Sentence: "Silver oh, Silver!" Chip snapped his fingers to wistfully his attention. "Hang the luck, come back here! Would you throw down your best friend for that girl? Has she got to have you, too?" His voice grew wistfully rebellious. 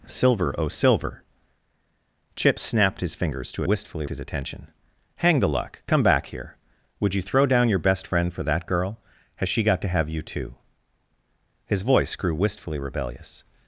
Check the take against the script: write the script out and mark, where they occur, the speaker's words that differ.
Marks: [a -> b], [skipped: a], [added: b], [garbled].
"Silver oh, Silver!" Chip snapped his fingers to wistfully his attention. "Hang the luck, come back here! Would you throw down your best friend for that girl? Has she got to have you, too?" His voice grew wistfully rebellious.